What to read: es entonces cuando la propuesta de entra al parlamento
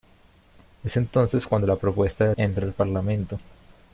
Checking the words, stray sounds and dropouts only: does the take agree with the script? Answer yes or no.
yes